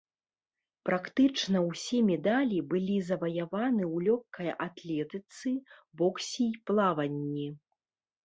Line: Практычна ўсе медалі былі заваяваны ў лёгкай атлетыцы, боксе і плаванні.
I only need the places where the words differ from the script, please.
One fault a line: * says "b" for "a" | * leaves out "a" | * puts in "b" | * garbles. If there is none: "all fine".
all fine